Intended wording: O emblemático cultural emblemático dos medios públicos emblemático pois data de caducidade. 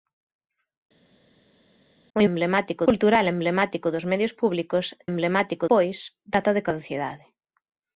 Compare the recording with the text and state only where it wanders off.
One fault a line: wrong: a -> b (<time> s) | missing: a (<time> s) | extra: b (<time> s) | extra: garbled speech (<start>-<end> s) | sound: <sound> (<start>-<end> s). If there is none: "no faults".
no faults